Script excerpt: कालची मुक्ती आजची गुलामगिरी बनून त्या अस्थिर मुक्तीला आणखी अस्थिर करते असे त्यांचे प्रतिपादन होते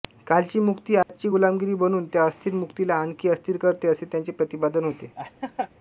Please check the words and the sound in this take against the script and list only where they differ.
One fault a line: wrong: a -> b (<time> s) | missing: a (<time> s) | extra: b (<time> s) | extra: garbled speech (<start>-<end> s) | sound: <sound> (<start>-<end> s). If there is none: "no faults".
sound: dropout (1.0-1.1 s)
sound: laugh (5.2-5.7 s)